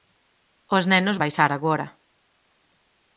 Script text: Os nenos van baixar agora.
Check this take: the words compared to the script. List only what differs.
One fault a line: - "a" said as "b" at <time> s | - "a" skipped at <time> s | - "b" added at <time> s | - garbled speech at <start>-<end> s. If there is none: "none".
- "van" skipped at 1.2 s